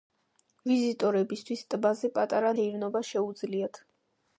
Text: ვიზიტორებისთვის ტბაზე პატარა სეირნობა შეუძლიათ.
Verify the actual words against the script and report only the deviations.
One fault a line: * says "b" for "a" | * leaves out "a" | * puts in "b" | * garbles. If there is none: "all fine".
all fine